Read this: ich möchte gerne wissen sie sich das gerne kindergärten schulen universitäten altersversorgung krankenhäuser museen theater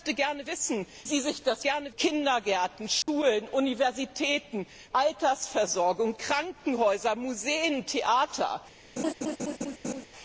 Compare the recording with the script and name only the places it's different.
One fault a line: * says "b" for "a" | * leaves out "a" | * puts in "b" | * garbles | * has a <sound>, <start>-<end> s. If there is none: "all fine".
* has a dropout, 3.0-3.1 s
* has a laugh, 9.0-10.1 s